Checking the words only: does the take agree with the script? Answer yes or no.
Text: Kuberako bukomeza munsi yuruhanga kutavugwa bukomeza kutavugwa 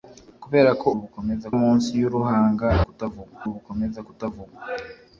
yes